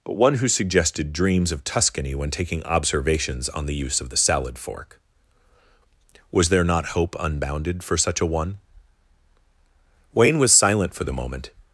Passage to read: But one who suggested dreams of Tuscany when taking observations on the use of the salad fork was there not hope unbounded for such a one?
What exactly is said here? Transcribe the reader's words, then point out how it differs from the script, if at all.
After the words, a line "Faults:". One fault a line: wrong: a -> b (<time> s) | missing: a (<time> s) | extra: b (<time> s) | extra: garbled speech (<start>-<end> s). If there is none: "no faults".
But one who suggested dreams of Tuscany when taking observations on the use of the salad fork was there not hope unbounded for such a one? Wayne was silent for the moment
Faults:
extra: Wayne was silent for the moment (10.1 s)